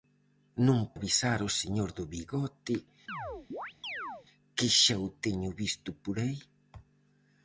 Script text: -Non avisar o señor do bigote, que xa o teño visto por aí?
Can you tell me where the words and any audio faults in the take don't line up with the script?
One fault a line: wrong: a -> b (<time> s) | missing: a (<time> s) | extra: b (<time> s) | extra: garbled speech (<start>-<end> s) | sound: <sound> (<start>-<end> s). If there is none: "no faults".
sound: chirp (3.1-4.3 s)